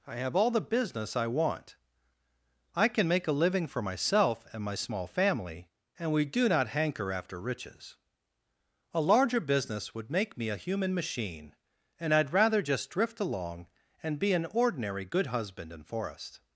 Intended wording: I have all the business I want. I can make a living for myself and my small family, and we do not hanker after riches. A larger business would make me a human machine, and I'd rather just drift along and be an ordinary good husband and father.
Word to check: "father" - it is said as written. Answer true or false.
false